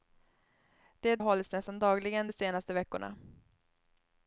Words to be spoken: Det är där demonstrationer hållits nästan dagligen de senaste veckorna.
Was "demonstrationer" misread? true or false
true